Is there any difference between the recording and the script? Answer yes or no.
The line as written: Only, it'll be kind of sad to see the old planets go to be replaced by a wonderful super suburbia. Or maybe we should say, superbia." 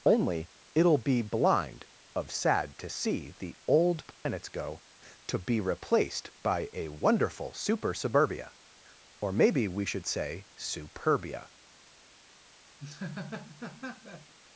yes